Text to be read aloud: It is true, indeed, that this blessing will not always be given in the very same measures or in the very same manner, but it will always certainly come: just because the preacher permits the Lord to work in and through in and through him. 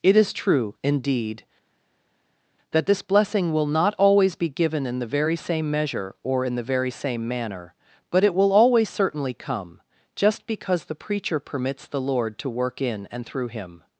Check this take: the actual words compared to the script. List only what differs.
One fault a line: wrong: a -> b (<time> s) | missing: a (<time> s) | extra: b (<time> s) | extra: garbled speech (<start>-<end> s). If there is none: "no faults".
wrong: measures -> measure (5.7 s)
missing: in and through (13.5 s)